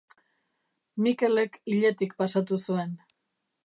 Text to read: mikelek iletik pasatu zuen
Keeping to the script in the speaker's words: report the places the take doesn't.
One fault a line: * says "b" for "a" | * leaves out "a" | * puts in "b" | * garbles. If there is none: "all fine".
all fine